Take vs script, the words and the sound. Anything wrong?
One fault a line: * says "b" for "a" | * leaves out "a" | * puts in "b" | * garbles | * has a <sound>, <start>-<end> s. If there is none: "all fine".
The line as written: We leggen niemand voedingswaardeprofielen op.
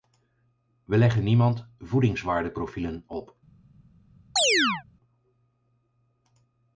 * has a chirp, 4.4-4.8 s